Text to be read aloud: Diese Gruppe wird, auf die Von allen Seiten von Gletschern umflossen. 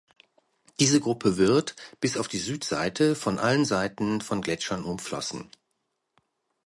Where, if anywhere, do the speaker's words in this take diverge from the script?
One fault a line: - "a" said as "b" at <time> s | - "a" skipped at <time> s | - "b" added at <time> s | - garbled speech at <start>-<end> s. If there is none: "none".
- "bis" added at 2.0 s
- "Südseite" added at 2.4 s